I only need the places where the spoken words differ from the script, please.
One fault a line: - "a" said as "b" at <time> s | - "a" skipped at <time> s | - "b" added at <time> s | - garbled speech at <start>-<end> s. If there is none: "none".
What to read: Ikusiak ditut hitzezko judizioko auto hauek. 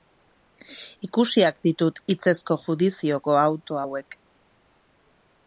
none